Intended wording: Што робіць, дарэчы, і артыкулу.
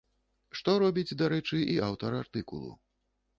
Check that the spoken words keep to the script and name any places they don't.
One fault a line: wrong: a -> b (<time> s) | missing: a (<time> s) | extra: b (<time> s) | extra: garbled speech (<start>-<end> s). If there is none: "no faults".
extra: аўтар (1.9 s)